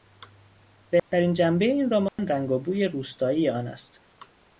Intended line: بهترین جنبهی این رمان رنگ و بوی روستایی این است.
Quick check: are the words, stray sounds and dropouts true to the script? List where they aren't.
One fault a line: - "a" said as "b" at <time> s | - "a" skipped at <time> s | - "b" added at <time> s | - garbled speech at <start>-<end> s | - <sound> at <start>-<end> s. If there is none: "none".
- dropout at 1.0-1.1 s
- dropout at 2.1-2.2 s
- "این" said as "آن" at 3.5 s